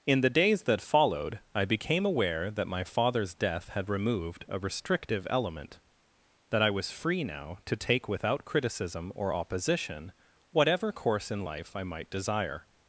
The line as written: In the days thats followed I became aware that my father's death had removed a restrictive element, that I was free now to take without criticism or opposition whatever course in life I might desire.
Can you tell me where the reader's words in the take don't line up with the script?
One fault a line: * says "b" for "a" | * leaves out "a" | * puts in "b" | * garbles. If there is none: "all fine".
* says "that" for "thats"